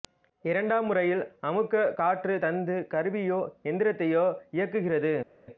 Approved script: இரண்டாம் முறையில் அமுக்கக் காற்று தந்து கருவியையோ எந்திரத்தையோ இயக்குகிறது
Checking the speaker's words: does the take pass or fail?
pass